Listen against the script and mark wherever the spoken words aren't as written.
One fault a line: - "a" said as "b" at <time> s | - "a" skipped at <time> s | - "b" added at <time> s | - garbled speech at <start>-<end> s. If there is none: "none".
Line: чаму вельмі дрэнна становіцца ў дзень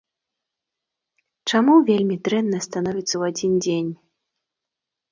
- "адзін" added at 3.4 s